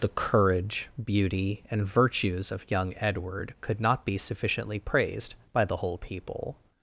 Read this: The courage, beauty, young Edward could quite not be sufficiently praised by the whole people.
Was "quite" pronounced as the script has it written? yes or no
no